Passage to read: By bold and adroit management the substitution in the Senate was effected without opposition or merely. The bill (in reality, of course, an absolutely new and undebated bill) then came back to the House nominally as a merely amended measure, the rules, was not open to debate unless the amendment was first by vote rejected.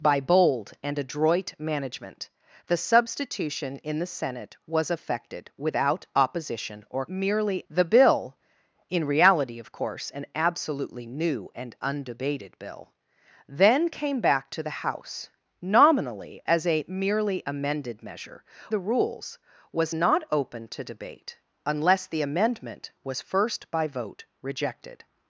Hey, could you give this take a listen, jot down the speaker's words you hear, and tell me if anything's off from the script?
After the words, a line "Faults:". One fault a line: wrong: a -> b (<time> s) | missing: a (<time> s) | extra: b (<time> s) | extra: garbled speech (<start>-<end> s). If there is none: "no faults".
By bold and adroit management the substitution in the Senate was effected without opposition or merely. The bill (in reality, of course, an absolutely new and undebated bill) then came back to the House nominally as a merely amended measure, the rules, was not open to debate unless the amendment was first by vote rejected.
Faults:
no faults